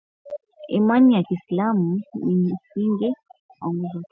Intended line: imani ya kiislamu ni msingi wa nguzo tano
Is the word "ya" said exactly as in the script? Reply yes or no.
yes